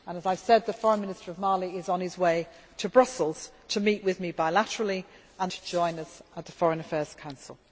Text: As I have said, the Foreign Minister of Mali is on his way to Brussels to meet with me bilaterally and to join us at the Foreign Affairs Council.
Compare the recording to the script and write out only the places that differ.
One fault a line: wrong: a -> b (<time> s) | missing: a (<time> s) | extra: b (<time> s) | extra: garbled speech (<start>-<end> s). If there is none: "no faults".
no faults